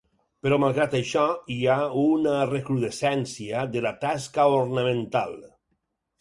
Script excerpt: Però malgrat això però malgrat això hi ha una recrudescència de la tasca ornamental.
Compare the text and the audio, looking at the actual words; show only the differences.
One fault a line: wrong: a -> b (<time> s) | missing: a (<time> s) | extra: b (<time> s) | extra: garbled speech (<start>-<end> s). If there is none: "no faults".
missing: però malgrat això (1.2 s)